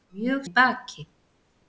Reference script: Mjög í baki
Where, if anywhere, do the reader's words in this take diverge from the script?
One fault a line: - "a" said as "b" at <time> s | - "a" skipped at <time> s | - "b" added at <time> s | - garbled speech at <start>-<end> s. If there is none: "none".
none